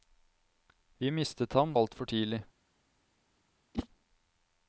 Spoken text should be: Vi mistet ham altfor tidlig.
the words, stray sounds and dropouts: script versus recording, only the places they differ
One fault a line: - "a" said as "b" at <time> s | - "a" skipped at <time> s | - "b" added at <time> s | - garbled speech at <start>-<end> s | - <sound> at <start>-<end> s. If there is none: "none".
- whoosh at 3.7-3.9 s